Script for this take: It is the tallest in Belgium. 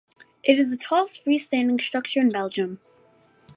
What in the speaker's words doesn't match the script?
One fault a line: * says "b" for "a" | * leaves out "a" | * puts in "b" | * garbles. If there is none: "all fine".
* puts in "free standing structure"